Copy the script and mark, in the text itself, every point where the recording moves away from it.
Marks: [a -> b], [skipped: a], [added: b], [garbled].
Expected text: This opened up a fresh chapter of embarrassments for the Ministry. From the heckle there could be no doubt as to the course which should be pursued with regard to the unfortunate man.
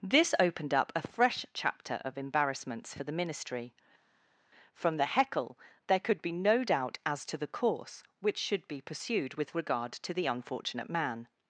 This opened up a fresh chapter of embarrassments for the Ministry. From the heckle there could be no doubt as to the course which should be pursued with regard to the unfortunate man.